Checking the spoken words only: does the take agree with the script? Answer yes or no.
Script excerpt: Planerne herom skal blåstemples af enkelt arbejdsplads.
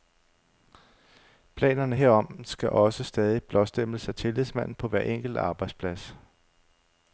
no